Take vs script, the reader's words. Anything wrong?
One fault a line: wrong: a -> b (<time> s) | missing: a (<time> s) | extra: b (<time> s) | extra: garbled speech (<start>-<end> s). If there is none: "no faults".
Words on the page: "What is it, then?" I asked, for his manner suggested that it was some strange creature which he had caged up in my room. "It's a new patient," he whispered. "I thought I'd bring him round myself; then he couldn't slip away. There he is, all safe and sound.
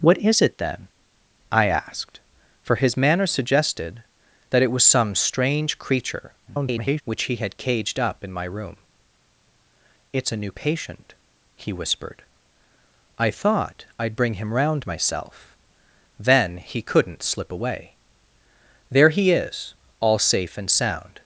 extra: garbled speech (6.5-7.0 s)